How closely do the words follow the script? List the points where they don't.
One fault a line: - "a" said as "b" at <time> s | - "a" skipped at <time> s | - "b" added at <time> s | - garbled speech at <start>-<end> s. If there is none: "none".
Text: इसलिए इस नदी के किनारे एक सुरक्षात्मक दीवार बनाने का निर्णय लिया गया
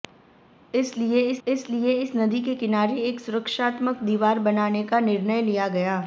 - "इसलिए इस" added at 1.5 s